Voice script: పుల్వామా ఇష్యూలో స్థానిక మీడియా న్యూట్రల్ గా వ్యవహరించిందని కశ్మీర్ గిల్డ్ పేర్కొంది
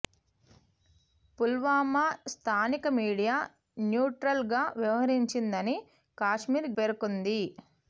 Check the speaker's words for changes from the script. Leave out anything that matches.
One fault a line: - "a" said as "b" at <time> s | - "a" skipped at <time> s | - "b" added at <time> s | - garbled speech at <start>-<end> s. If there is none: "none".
- "ఇష్యూలో" skipped at 2.0 s
- "గిల్డ్" skipped at 6.7 s